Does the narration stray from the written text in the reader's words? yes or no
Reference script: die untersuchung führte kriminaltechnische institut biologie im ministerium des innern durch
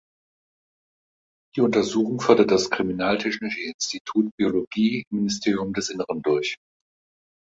yes